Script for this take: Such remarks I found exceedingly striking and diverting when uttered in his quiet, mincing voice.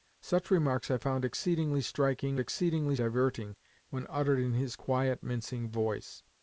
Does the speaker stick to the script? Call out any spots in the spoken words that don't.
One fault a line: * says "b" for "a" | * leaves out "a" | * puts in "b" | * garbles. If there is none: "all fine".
* says "exceedingly" for "and"